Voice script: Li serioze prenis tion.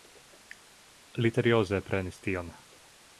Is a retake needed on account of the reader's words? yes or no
no